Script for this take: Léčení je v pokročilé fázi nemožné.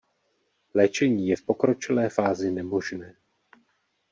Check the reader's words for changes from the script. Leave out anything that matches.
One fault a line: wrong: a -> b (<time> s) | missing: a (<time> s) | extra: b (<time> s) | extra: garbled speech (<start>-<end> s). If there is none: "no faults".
no faults